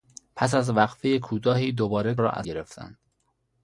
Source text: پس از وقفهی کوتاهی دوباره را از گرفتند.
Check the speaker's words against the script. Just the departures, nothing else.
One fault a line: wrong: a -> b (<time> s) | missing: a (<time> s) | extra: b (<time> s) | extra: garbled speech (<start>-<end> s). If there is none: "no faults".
no faults